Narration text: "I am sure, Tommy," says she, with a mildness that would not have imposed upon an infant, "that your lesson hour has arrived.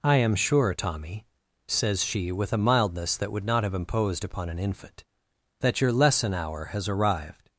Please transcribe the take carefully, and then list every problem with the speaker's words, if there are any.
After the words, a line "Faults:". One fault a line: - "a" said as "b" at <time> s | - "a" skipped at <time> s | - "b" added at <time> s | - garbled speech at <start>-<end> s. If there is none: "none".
"I am sure, Tommy," says she, with a mildness that would not have imposed upon an infant, "that your lesson hour has arrived.
Faults:
none